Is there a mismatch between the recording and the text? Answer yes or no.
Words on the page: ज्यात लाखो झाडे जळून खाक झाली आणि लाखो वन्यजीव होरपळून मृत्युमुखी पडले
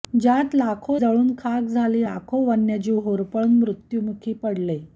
yes